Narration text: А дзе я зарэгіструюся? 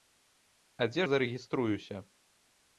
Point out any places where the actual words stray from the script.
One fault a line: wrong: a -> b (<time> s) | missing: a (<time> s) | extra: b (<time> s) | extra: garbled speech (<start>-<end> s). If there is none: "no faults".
no faults